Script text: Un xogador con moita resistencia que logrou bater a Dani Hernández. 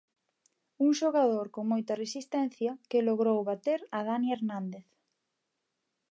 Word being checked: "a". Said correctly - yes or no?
yes